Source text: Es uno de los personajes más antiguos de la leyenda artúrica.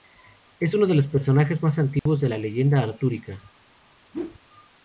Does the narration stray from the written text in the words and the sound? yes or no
yes